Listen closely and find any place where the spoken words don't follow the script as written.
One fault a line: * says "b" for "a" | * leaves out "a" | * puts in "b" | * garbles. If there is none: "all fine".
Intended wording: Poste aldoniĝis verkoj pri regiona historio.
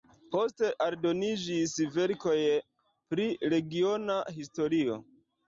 all fine